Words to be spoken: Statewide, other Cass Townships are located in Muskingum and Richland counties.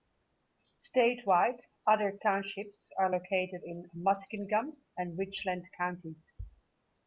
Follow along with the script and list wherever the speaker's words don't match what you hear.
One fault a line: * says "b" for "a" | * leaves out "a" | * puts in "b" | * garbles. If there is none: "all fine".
* leaves out "Cass"